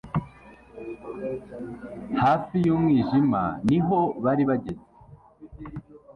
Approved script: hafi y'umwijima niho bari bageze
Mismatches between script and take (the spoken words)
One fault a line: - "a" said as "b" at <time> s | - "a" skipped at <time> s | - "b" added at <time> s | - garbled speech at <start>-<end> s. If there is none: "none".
none